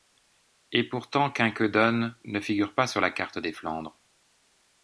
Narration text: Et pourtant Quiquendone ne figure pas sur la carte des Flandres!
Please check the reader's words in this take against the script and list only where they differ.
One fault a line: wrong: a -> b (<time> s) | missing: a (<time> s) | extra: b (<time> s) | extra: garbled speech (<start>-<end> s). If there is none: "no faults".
no faults